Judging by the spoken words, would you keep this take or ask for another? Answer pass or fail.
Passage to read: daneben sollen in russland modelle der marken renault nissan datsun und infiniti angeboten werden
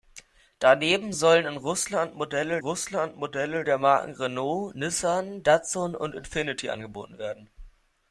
fail